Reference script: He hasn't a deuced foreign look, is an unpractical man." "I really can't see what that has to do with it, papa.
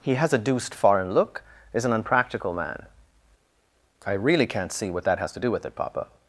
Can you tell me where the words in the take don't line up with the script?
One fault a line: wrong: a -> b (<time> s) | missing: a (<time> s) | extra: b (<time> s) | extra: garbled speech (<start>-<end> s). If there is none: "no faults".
wrong: hasn't -> has (0.1 s)